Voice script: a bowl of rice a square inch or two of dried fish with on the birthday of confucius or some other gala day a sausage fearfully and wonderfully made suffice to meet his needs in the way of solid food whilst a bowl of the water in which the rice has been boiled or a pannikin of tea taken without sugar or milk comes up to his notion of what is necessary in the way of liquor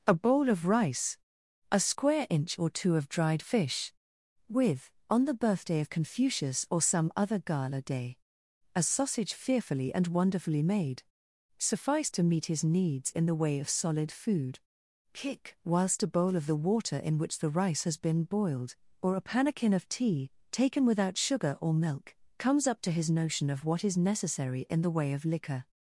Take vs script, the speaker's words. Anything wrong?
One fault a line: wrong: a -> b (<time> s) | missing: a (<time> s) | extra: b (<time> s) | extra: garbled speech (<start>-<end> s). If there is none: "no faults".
extra: kick (15.1 s)